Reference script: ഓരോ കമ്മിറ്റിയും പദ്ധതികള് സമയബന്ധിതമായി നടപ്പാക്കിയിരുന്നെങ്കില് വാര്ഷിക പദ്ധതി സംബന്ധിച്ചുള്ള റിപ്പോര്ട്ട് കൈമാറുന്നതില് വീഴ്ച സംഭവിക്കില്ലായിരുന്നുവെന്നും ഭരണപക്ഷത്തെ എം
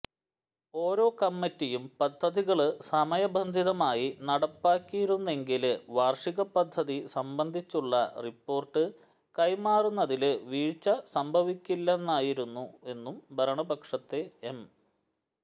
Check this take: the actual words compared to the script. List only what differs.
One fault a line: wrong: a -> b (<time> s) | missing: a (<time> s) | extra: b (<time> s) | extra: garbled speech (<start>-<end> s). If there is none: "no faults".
no faults